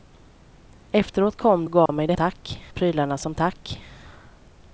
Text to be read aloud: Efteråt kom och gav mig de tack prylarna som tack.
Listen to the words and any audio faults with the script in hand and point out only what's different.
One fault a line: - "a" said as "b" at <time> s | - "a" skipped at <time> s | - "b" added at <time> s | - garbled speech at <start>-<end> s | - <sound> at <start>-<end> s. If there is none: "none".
- dropout at 1.9-1.9 s